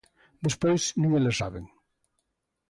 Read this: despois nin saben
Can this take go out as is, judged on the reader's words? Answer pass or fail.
fail